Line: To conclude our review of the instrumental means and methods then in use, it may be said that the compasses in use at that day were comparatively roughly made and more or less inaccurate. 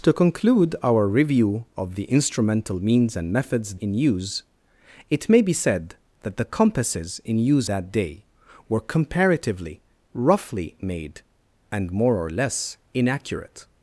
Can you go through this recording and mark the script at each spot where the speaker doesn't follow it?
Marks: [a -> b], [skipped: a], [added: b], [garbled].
To conclude our review of the instrumental means and methods [skipped: then] in use, it may be said that the compasses in use [skipped: at] that day were comparatively roughly made and more or less inaccurate.